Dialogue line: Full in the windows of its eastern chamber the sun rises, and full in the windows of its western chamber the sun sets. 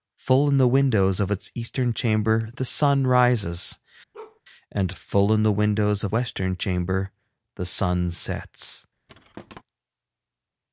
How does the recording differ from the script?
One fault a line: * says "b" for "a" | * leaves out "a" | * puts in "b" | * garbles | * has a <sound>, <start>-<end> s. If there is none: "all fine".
* has a bark, 4.1-4.4 s
* leaves out "its"
* has a thud, 9.1-9.6 s